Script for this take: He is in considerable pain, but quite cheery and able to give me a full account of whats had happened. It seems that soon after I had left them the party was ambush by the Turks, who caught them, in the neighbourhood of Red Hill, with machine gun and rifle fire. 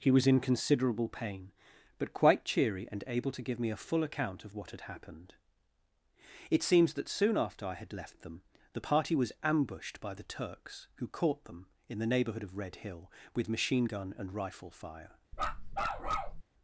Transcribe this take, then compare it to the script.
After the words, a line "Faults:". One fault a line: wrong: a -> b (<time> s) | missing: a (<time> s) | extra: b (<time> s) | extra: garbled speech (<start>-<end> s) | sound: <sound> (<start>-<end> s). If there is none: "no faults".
He was in considerable pain, but quite cheery and able to give me a full account of what had happened. It seems that soon after I had left them the party was ambushed by the Turks, who caught them, in the neighbourhood of Red Hill, with machine gun and rifle fire.
Faults:
wrong: is -> was (0.1 s)
wrong: whats -> what (4.5 s)
wrong: ambush -> ambushed (9.4 s)
sound: bark (15.3-16.4 s)